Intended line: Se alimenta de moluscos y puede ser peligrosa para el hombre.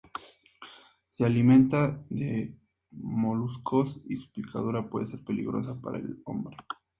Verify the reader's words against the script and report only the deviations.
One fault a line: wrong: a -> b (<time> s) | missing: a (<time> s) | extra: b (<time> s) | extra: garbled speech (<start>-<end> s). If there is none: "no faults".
extra: su picadura (4.1 s)